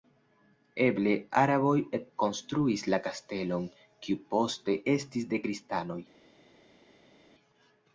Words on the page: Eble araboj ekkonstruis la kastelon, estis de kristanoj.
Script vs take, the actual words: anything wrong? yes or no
yes